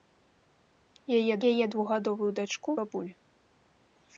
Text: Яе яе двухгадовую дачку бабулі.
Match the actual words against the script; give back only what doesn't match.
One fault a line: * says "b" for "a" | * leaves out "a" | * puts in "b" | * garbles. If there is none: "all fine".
all fine